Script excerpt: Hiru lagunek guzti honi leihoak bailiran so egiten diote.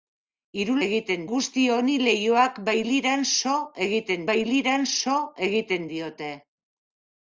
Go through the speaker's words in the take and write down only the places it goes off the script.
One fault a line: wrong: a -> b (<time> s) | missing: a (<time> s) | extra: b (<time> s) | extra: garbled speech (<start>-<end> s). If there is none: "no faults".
wrong: lagunek -> egiten (0.9 s)
extra: bailiran so egiten (4.3 s)